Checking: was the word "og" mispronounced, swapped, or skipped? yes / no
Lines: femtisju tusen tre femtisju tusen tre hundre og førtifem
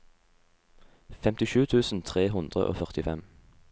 no